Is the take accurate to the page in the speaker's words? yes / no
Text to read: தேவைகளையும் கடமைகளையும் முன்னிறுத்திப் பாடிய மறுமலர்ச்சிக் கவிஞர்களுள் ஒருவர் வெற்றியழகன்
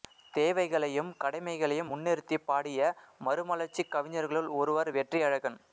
yes